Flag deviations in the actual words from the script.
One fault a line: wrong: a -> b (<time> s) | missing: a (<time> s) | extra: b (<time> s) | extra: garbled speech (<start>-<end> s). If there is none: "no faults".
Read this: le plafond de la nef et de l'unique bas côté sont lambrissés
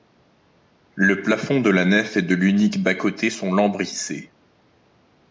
no faults